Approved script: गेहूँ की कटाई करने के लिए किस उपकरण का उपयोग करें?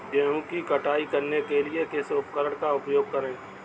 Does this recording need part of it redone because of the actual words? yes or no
no